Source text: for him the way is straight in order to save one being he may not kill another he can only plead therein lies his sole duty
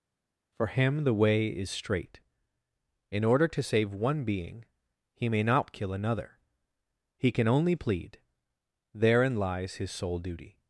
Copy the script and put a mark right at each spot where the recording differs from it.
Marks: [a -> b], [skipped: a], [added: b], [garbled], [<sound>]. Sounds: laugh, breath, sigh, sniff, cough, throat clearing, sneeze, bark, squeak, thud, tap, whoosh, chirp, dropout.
for him the way is straight in order to save one being he may not kill another he can only plead therein lies his sole duty